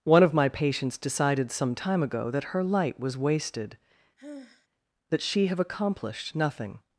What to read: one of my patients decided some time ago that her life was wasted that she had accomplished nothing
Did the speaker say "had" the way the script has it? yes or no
no